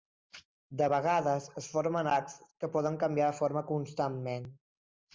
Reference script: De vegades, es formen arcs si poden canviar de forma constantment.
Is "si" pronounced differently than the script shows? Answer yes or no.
yes